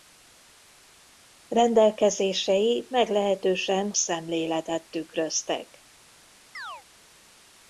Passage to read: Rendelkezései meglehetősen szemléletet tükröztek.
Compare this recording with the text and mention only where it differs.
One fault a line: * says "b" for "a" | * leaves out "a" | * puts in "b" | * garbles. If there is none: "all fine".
all fine